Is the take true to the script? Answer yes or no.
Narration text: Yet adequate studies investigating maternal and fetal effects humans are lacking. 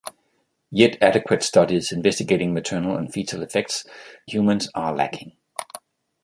yes